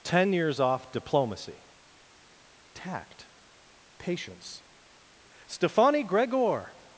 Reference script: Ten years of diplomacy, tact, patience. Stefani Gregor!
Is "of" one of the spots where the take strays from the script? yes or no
yes